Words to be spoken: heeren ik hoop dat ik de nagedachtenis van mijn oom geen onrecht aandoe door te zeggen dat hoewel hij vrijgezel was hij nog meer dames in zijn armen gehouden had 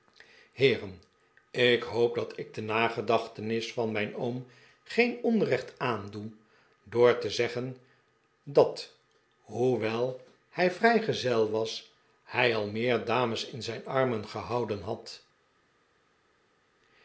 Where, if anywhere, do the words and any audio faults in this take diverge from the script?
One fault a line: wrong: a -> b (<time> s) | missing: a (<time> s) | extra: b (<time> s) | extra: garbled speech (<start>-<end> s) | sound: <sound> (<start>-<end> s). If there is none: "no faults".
wrong: nog -> al (12.6 s)